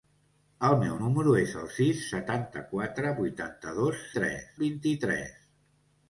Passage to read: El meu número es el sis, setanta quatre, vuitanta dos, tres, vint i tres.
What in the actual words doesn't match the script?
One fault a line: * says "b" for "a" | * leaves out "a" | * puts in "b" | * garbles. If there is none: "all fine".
all fine